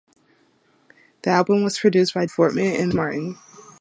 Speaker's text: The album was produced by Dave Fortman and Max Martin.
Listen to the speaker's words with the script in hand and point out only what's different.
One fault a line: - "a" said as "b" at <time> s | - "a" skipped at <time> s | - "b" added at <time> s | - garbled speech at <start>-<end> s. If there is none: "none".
- "Dave" skipped at 2.2 s
- "Max" skipped at 2.9 s